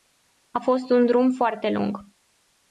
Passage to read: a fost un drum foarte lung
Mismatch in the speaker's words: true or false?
false